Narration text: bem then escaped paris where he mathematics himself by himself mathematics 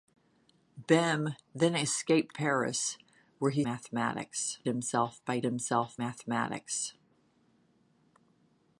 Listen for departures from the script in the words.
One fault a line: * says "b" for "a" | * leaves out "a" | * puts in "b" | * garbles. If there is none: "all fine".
all fine